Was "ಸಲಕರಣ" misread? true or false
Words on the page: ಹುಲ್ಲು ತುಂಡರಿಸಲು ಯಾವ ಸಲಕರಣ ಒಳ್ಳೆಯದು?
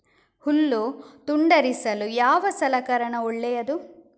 false